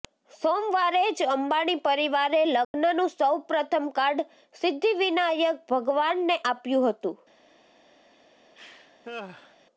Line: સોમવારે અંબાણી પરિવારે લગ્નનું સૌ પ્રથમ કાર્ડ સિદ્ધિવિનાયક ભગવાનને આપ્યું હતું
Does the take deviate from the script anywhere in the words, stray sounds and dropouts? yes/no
yes